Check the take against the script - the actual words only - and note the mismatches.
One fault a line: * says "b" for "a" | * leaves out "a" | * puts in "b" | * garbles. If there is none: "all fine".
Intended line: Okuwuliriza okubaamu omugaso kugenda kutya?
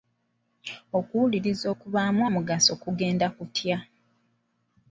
all fine